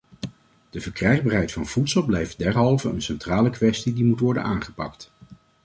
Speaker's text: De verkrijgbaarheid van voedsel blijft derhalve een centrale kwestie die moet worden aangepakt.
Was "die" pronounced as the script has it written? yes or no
yes